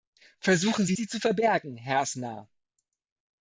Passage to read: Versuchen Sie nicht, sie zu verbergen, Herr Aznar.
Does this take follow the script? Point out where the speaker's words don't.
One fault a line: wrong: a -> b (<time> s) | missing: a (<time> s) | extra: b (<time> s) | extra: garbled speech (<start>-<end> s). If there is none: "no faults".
missing: nicht (1.0 s)